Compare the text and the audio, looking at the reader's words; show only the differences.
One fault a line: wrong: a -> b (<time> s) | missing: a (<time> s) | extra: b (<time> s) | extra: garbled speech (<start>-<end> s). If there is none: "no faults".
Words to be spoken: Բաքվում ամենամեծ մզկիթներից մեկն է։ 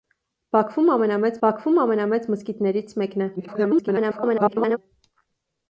extra: բաքվում ամենամեծ (1.4 s)
extra: garbled speech (3.4-4.8 s)